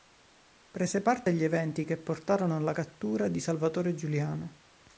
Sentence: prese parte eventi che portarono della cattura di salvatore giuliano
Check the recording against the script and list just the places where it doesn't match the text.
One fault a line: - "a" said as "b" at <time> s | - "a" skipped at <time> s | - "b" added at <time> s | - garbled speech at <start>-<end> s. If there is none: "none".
- "agli" added at 1.3 s
- "della" said as "alla" at 2.5 s